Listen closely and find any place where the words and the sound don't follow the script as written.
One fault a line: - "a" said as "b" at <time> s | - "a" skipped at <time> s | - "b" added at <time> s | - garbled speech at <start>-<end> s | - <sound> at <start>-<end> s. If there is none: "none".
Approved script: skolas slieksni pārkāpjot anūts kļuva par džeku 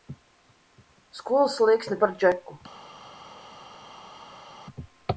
- "pārkāpjot anūts kļuva" skipped at 2.0 s